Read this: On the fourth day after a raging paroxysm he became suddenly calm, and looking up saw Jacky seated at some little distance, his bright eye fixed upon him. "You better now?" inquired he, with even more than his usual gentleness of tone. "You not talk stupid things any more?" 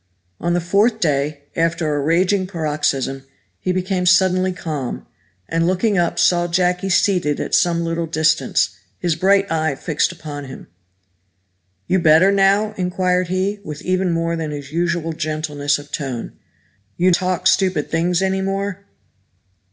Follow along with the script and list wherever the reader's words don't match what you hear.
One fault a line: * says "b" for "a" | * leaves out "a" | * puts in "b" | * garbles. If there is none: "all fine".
* leaves out "not"